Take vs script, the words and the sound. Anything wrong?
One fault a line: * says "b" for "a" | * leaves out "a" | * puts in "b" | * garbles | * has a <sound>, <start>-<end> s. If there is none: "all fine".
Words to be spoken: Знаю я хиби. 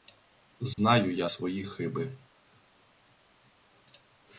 * has a dropout, 0.7-0.8 s
* puts in "свої"